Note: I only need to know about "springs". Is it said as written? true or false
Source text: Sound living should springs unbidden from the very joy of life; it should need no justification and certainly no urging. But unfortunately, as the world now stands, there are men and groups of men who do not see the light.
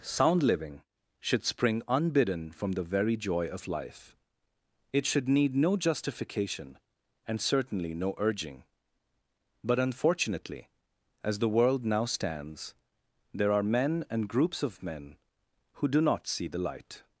false